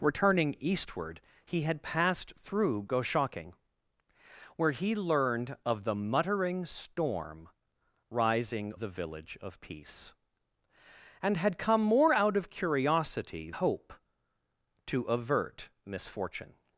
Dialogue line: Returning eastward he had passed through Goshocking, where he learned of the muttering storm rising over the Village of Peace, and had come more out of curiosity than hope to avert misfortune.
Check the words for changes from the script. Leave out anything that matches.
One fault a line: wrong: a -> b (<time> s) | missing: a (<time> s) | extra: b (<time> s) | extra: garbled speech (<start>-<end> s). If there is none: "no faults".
missing: over (8.7 s)
missing: than (13.5 s)